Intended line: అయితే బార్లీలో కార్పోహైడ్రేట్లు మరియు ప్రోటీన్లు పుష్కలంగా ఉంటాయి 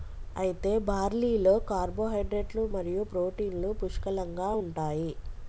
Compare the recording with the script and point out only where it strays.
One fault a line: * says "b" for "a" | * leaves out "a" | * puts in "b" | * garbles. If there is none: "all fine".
all fine